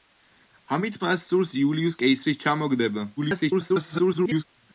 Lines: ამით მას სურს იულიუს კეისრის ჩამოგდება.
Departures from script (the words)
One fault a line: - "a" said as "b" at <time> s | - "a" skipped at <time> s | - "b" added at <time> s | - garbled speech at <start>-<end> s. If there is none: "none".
- garbled speech at 3.2-4.4 s